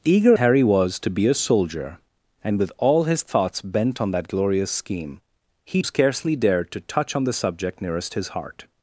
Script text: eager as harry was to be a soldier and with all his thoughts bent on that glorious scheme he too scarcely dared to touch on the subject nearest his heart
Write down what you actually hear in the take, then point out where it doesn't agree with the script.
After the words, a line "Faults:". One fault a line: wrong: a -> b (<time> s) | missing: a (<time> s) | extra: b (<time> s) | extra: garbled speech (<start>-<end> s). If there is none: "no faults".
eager harry was to be a soldier and with all his thoughts bent on that glorious scheme he scarcely dared to touch on the subject nearest his heart
Faults:
missing: as (0.3 s)
missing: too (5.8 s)